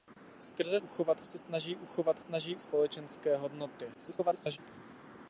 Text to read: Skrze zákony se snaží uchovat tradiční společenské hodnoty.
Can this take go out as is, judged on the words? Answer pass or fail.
fail